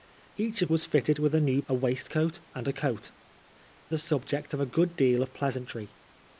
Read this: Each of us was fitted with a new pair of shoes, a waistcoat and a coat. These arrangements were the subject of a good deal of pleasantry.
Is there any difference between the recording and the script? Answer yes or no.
yes